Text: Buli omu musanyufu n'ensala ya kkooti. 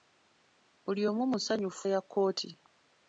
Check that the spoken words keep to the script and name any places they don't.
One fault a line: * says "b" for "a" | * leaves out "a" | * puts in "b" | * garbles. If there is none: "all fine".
* leaves out "n'ensala"